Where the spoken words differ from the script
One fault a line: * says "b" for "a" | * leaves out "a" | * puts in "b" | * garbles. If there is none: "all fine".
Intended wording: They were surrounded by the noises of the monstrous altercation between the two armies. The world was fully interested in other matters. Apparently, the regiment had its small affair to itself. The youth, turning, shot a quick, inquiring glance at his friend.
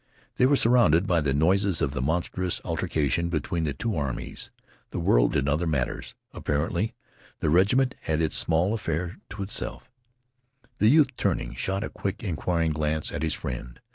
* leaves out "was fully interested"